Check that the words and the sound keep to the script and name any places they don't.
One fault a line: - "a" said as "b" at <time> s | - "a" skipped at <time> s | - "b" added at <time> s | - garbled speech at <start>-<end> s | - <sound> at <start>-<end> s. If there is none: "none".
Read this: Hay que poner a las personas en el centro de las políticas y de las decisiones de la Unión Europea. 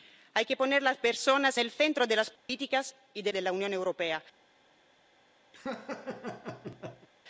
- "en" skipped at 1.6 s
- dropout at 2.4-2.5 s
- "las decisiones" skipped at 3.3 s
- laugh at 5.5-7.1 s